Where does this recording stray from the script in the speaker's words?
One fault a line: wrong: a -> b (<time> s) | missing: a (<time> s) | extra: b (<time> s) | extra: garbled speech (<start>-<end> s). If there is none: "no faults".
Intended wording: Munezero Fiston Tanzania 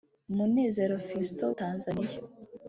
no faults